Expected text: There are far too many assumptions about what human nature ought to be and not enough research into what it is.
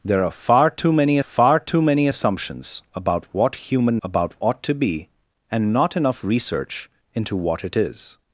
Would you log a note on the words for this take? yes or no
yes